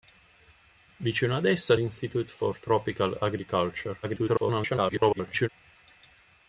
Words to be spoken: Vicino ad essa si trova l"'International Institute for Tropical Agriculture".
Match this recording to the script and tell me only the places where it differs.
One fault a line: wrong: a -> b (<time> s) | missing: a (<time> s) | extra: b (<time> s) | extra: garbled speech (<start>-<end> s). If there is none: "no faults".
missing: si trova l"'International (1.8 s)
extra: garbled speech (4.0-5.5 s)